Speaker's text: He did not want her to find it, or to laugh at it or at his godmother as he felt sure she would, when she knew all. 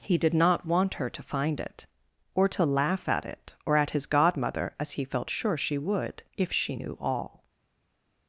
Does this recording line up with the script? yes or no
no